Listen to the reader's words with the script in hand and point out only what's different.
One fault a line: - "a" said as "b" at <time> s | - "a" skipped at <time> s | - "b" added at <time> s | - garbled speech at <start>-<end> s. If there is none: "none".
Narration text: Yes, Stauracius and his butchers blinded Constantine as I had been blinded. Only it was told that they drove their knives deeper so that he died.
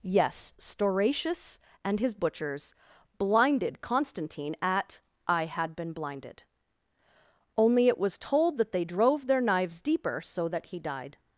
- "as" said as "at" at 4.6 s